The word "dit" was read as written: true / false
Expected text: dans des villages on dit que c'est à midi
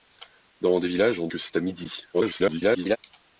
false